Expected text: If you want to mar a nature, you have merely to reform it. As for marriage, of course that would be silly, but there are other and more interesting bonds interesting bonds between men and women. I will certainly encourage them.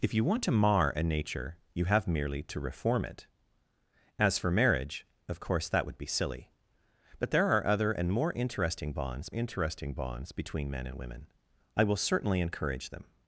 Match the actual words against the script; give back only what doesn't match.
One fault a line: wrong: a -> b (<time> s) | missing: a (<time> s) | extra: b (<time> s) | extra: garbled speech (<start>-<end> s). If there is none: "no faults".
no faults